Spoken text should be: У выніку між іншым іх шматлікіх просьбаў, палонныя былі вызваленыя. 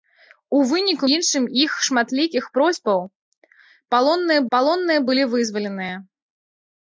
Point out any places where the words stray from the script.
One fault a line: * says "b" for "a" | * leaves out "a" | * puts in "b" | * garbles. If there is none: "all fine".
* leaves out "між"
* puts in "палонныя"